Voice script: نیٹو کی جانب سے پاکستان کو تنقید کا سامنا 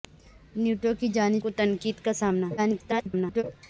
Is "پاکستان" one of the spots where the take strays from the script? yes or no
yes